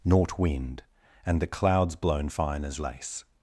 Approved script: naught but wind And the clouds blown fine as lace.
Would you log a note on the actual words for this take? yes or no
yes